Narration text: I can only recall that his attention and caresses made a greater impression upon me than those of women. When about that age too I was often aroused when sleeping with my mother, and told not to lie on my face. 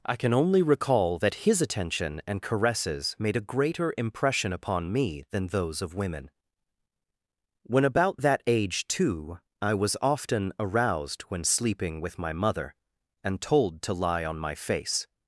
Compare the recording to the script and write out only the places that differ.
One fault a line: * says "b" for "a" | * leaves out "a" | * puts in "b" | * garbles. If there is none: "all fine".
* leaves out "not"